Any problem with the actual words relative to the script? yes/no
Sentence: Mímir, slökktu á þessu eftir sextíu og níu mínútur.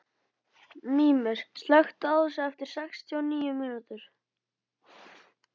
no